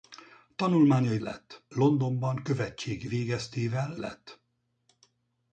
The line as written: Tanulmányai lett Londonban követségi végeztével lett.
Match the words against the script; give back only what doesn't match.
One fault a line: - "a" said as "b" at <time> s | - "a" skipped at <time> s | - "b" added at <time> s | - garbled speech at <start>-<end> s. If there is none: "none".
none